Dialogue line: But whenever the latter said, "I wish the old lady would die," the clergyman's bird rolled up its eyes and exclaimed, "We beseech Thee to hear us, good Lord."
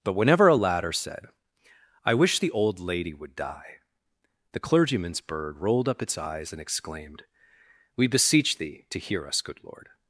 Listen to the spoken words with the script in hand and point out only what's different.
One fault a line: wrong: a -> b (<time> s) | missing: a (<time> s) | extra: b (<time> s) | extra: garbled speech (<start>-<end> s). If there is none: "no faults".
wrong: the -> a (0.5 s)